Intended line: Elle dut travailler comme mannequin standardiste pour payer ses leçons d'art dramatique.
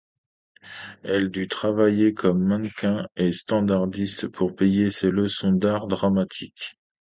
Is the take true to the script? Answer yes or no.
no